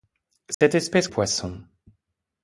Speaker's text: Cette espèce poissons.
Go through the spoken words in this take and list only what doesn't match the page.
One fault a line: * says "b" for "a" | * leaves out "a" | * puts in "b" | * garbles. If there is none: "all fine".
all fine